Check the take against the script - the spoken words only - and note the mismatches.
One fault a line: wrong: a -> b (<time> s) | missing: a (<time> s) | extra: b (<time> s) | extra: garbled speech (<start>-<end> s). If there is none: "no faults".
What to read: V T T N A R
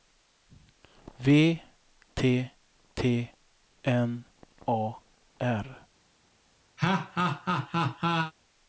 no faults